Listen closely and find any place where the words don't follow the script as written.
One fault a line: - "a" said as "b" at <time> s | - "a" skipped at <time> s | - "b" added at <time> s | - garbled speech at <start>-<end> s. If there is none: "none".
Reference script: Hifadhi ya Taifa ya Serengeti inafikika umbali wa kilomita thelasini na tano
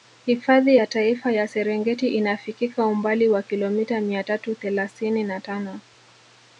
- "mia tatu" added at 4.0 s